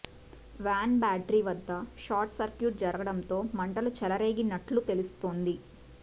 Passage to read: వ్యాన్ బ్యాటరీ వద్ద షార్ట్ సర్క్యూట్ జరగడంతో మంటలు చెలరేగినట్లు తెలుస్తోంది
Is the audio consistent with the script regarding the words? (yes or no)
yes